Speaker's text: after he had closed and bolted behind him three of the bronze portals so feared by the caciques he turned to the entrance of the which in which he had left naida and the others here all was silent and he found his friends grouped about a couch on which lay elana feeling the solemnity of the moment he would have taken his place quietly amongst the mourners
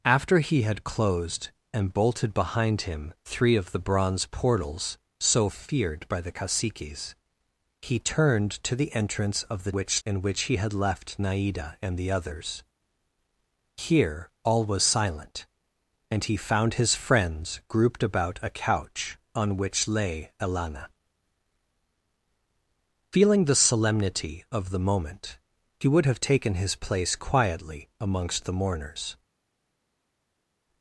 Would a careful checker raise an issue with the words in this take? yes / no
no